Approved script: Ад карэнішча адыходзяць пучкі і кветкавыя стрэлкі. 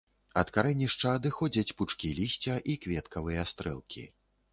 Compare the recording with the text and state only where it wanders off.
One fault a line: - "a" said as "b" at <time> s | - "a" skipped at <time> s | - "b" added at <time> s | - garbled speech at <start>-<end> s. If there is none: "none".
- "лісця" added at 2.2 s